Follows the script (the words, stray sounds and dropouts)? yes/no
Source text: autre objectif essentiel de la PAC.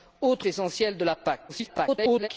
no